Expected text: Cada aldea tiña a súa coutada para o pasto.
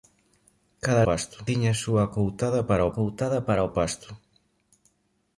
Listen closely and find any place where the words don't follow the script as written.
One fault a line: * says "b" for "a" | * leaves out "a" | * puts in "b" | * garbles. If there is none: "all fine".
* says "pasto" for "aldea"
* puts in "coutada para"